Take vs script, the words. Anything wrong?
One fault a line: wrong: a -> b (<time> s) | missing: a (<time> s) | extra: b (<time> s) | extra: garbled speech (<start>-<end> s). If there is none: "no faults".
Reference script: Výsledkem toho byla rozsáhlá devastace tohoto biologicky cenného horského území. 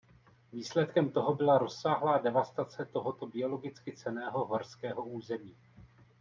no faults